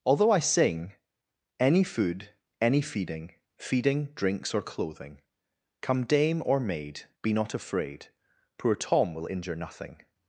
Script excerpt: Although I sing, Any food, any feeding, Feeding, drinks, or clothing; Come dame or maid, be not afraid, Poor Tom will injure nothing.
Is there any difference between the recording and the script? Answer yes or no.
no